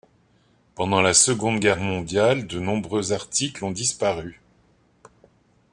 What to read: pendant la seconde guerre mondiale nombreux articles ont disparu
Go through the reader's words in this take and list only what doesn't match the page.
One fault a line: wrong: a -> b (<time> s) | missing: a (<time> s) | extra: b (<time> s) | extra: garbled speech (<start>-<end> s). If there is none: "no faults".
extra: de (2.5 s)